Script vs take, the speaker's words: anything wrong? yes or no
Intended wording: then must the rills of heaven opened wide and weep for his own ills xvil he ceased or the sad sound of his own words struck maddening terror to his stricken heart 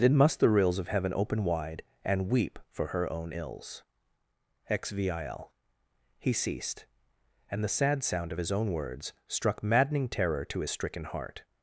yes